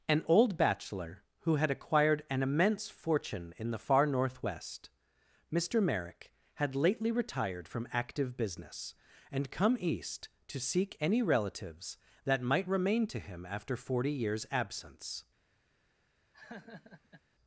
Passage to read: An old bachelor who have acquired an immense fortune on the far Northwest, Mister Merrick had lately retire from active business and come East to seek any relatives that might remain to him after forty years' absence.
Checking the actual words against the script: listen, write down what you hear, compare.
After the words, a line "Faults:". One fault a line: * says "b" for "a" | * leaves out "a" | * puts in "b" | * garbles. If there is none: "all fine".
An old bachelor who had acquired an immense fortune in the far Northwest, Mister Merrick had lately retired from active business and come East to seek any relatives that might remain to him after forty years' absence.
Faults:
* says "had" for "have"
* says "in" for "on"
* says "retired" for "retire"